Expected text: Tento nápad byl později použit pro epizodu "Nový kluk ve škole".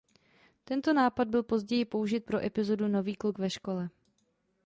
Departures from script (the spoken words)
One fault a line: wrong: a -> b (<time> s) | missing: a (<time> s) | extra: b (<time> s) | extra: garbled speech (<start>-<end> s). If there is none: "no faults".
no faults